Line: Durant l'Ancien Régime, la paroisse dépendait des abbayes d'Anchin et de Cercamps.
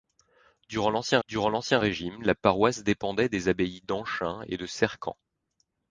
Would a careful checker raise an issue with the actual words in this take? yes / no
yes